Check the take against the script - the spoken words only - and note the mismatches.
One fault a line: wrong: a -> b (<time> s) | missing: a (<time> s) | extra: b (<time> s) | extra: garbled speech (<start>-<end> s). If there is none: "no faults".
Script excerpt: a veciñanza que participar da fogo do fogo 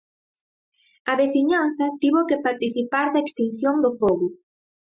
extra: tivo (2.0 s)
wrong: fogo -> extinción (3.2 s)